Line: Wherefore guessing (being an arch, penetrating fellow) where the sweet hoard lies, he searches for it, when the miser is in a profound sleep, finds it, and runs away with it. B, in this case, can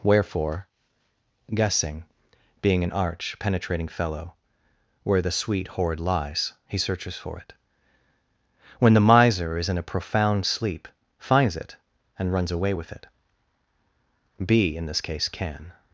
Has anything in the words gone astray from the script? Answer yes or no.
no